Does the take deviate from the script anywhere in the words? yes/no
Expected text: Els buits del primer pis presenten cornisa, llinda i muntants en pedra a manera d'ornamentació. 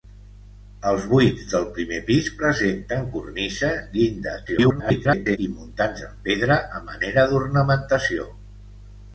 yes